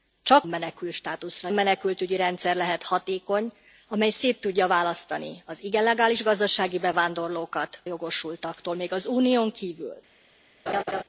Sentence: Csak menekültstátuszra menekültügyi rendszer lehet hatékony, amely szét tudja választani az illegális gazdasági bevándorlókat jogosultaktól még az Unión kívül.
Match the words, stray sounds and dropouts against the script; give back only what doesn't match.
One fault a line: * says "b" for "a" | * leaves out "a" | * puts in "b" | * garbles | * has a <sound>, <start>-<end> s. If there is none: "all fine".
* has a laugh, 10.7-11.0 s